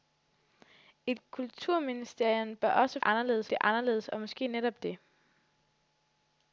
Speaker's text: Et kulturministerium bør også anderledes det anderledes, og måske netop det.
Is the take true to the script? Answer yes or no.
yes